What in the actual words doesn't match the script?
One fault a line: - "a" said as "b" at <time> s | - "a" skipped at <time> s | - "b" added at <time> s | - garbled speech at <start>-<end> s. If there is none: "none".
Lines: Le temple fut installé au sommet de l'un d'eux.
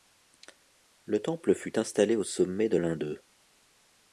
none